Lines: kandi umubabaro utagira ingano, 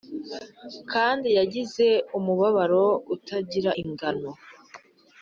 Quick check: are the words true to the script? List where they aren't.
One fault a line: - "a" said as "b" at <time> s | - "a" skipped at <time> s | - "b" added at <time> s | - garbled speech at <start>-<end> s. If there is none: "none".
- "yagize" added at 1.4 s